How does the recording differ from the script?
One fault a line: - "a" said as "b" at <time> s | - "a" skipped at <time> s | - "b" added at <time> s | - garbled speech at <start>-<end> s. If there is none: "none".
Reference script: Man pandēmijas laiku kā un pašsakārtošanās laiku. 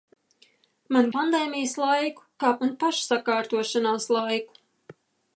none